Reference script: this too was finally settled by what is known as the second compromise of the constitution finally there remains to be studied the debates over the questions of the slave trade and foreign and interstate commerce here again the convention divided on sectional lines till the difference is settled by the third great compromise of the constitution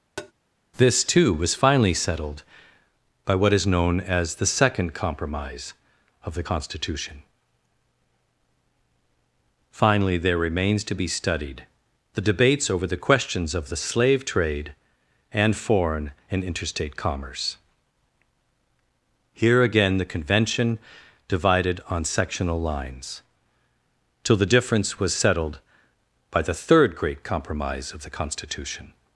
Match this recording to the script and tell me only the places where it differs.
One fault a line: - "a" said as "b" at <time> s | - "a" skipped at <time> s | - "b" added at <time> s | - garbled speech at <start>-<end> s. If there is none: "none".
- "is" said as "was" at 25.0 s